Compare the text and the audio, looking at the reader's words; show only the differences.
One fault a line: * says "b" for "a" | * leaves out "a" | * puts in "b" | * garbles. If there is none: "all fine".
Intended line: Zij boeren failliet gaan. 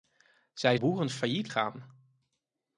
all fine